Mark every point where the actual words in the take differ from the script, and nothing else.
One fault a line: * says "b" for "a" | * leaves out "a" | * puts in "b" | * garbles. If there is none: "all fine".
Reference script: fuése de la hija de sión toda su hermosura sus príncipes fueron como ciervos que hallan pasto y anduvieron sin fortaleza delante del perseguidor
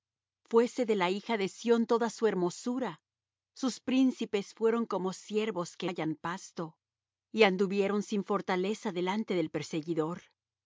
all fine